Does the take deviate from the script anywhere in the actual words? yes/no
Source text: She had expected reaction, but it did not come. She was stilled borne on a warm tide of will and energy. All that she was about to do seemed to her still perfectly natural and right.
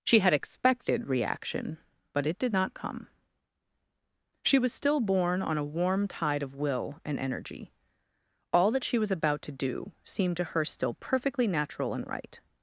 yes